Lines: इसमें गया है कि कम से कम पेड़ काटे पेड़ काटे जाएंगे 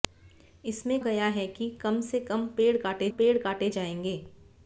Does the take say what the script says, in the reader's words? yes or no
yes